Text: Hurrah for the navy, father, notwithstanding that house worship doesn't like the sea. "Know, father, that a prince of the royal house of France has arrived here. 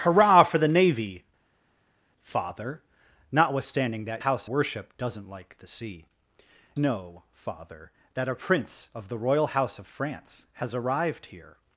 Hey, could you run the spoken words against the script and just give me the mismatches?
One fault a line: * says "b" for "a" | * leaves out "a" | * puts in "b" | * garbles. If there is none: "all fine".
all fine